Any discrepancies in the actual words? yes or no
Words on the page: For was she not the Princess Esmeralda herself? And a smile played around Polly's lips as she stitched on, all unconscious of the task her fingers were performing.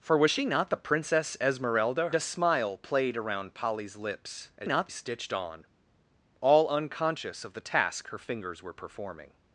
yes